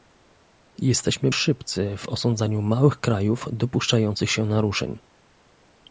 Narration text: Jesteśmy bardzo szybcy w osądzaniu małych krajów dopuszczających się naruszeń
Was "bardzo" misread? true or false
true